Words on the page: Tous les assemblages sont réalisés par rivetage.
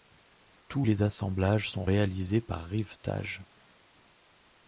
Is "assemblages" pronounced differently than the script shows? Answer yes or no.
no